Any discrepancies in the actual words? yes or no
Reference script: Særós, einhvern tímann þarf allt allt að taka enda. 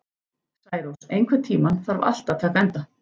yes